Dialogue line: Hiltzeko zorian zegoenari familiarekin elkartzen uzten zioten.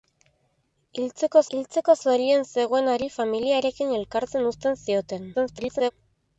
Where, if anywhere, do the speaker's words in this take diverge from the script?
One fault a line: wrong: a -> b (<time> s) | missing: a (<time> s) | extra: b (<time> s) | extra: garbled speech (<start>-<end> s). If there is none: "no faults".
extra: hiltzeko (1.6 s)
extra: garbled speech (5.3-5.9 s)